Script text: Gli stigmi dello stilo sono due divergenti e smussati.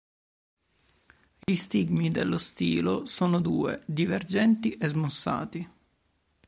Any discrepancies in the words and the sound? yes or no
yes